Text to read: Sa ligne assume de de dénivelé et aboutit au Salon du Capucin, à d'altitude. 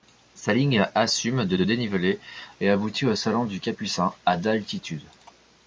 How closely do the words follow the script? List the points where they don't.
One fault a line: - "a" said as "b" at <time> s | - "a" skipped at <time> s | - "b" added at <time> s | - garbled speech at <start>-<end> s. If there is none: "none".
none